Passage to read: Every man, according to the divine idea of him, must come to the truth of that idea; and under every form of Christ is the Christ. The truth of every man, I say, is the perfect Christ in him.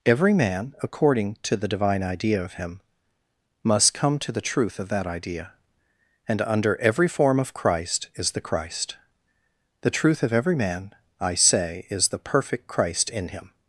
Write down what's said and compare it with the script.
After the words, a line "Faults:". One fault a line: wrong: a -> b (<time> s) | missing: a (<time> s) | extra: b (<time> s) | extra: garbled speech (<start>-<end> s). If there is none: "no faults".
Every man, according to the divine idea of him, must come to the truth of that idea; and under every form of Christ is the Christ. The truth of every man, I say, is the perfect Christ in him.
Faults:
no faults